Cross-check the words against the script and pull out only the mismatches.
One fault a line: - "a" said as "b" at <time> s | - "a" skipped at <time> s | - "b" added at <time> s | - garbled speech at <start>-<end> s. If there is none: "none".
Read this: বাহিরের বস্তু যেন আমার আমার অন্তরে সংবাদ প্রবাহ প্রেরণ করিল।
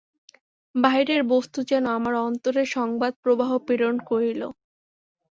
- "আমার" skipped at 2.1 s